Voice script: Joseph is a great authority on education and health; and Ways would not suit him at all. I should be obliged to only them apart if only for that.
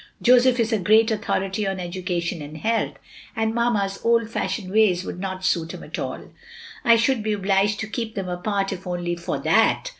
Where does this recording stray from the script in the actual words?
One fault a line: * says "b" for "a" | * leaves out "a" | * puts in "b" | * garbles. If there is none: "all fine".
* puts in "Mamma's old fashioned"
* says "keep" for "only"